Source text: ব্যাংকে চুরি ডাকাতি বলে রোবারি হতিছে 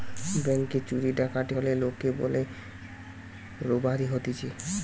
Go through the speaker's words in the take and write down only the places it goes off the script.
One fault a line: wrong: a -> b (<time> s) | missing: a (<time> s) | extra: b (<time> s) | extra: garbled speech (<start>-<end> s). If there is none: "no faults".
extra: হলে লোকে (1.5 s)